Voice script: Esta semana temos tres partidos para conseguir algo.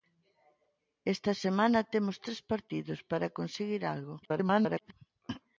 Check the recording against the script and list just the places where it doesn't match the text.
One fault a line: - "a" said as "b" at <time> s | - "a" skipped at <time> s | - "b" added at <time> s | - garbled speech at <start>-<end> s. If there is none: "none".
- garbled speech at 4.2-4.9 s